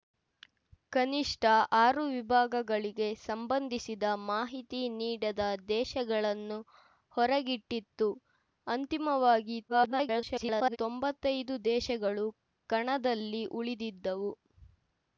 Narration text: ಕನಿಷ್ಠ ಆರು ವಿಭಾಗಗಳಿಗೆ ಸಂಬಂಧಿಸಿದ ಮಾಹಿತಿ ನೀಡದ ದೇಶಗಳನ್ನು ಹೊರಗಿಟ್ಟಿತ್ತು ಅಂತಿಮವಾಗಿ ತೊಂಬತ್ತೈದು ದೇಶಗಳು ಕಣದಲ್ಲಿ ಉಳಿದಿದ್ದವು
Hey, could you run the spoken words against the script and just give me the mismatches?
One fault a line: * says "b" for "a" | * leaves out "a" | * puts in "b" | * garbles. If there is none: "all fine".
* garbles